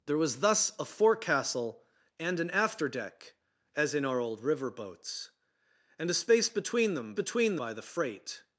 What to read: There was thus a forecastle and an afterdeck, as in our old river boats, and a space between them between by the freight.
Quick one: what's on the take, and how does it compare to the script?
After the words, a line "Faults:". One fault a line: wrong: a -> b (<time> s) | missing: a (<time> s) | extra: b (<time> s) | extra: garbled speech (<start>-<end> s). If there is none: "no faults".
There was thus a forecastle and an afterdeck, as in our old river boats, and a space between them between by the freight.
Faults:
no faults